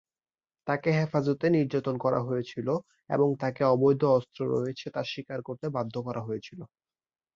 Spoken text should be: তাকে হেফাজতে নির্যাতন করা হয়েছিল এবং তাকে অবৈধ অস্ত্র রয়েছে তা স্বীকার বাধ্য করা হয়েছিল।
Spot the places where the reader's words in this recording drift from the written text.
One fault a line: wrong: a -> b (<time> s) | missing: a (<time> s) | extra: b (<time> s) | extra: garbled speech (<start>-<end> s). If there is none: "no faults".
extra: করতে (5.5 s)